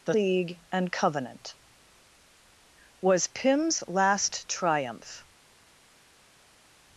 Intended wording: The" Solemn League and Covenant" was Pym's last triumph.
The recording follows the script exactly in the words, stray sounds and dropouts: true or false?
false